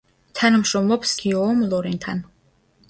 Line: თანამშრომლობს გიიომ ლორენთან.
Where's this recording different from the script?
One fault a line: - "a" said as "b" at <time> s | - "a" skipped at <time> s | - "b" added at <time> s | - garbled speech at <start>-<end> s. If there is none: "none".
none